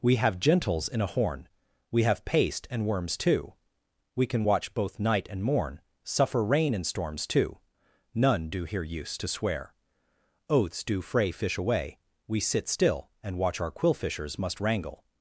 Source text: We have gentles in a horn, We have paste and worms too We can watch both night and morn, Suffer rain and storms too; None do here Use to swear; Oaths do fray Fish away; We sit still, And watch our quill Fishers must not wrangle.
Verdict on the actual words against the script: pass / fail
fail